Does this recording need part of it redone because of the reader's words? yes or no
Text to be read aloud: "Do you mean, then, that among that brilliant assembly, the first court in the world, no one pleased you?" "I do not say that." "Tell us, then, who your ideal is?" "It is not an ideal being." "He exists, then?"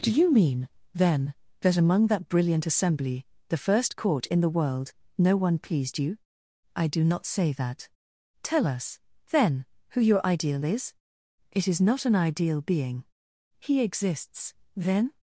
no